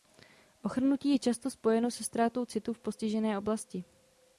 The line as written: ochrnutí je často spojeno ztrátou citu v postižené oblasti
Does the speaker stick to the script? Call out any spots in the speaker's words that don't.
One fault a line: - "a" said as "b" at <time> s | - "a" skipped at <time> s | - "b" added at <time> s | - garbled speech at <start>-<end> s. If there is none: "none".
- "se" added at 1.9 s